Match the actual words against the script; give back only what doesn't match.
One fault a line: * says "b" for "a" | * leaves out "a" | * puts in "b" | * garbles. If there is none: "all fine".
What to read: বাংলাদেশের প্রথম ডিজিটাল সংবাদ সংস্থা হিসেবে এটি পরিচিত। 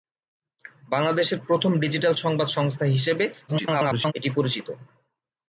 * garbles